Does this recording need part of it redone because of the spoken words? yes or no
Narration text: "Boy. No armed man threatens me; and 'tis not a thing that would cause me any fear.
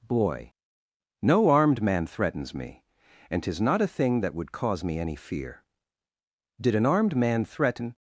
yes